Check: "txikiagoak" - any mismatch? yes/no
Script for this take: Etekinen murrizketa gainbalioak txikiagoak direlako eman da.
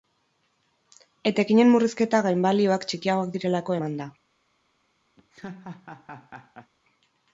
no